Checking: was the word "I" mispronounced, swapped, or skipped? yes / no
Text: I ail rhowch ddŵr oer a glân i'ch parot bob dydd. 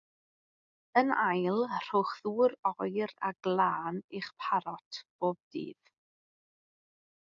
yes